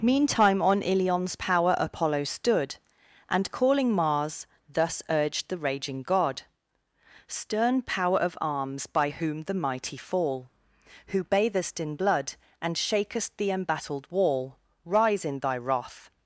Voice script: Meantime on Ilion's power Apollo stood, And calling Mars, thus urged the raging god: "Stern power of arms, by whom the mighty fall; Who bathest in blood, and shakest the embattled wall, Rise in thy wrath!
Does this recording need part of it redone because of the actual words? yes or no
no